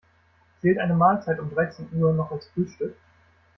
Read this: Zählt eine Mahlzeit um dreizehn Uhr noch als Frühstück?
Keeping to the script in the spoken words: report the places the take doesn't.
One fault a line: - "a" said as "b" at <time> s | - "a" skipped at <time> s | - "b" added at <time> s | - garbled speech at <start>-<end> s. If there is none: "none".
none